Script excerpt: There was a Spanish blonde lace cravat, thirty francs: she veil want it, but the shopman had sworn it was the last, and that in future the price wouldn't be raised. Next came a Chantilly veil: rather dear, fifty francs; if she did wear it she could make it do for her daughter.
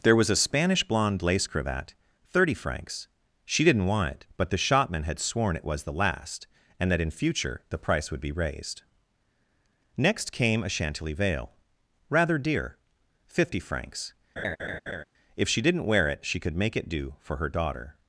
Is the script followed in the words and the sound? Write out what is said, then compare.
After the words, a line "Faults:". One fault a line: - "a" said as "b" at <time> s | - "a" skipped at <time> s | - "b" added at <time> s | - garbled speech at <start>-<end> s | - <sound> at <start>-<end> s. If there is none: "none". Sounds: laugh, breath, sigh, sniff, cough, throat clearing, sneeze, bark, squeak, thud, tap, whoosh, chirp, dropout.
There was a Spanish blonde lace cravat, thirty francs: she didn't want it, but the shopman had sworn it was the last, and that in future the price would be raised. Next came a Chantilly veil: rather dear, fifty francs; if she didn't wear it she could make it do for her daughter.
Faults:
- "veil" said as "didn't" at 3.7 s
- "wouldn't" said as "would" at 8.1 s
- laugh at 14.4-15.0 s
- "did" said as "didn't" at 15.6 s